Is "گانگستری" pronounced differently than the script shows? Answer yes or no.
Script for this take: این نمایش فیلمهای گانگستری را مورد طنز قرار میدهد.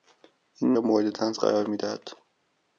yes